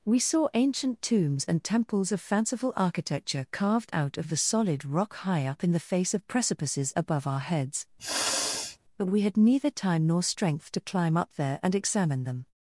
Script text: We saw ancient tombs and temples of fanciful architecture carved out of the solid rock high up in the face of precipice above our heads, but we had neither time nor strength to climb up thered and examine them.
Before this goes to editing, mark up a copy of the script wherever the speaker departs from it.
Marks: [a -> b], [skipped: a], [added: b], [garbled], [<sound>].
We saw ancient tombs and temples of fanciful architecture carved out of the solid rock high up in the face of [precipice -> precipices] above our heads, [sniff] but we had neither time nor strength to climb up [thered -> there] and examine them.